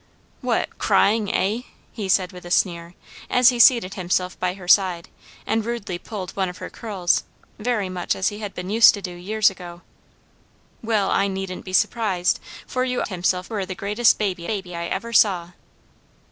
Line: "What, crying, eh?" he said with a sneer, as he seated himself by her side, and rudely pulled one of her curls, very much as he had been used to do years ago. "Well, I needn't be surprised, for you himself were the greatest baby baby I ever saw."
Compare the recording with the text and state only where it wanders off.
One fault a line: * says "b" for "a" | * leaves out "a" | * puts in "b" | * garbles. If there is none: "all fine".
all fine